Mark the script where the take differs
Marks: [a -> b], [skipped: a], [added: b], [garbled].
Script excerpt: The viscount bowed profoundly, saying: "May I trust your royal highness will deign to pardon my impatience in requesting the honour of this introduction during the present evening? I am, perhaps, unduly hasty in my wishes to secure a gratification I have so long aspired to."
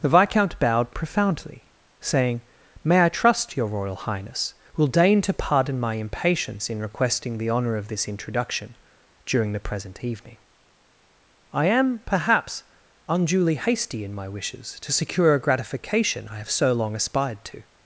The viscount bowed profoundly, saying: "May I trust your royal highness will deign to pardon my impatience in requesting the honour of this introduction during the present evening? I am, perhaps, unduly hasty in my wishes to secure a gratification I have so long aspired to."